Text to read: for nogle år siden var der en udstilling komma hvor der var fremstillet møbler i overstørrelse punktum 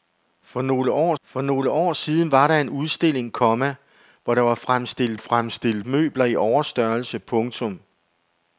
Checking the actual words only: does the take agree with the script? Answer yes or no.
no